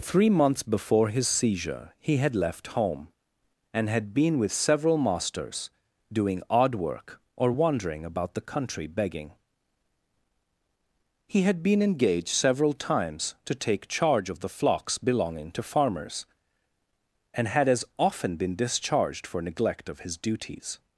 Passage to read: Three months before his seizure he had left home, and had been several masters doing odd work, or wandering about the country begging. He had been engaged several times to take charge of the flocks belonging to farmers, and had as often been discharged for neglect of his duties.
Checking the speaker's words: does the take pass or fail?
fail